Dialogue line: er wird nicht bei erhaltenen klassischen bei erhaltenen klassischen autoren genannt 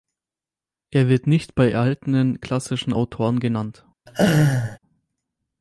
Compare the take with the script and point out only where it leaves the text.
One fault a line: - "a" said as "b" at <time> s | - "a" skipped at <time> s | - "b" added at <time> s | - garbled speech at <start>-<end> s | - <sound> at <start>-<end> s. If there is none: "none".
- "bei erhaltenen klassischen" skipped at 2.9 s
- laugh at 4.1-4.8 s